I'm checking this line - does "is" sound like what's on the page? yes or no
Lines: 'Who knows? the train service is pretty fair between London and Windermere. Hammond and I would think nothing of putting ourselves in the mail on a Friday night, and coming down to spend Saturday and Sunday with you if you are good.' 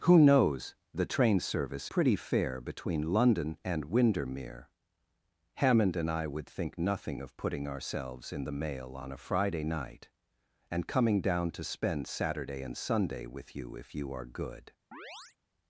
no